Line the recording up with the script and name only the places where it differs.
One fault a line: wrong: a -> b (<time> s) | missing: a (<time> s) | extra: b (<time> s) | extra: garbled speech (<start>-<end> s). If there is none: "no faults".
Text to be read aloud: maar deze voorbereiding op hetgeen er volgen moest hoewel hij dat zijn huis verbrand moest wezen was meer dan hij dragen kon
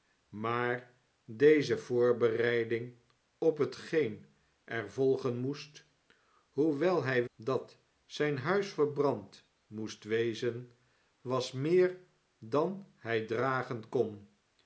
no faults